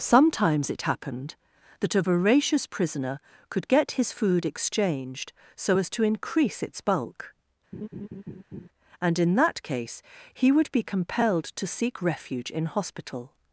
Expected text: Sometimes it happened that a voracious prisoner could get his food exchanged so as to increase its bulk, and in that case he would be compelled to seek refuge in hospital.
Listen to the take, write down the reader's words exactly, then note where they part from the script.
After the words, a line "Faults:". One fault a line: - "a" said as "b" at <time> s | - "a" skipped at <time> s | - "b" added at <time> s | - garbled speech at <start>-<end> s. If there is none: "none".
Sometimes it happened that a voracious prisoner could get his food exchanged so as to increase its bulk, and in that case he would be compelled to seek refuge in hospital.
Faults:
none